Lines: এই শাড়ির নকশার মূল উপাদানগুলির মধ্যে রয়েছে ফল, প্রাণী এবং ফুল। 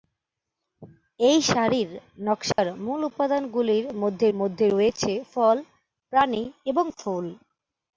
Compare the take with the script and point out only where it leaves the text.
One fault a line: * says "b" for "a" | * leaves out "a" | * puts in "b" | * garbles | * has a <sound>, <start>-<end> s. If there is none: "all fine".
* has a dropout, 2.5-2.6 s
* puts in "মধ্যে"